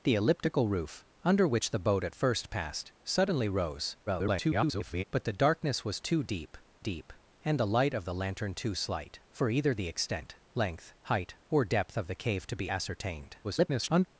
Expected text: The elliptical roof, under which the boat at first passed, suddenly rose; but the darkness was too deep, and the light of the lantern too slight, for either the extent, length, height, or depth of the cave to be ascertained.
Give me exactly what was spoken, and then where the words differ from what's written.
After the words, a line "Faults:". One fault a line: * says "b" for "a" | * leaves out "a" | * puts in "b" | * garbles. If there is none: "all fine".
The elliptical roof, under which the boat at first passed, suddenly rose; [garbled] but the darkness was too deep deep, and the light of the lantern too slight, for either the extent, length, height, or depth of the cave to be ascertained. [garbled]
Faults:
* garbles
* puts in "deep"
* garbles